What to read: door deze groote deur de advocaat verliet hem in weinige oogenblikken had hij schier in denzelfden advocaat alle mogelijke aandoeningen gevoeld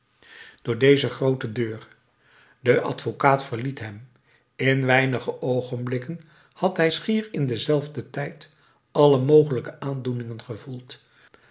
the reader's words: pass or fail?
fail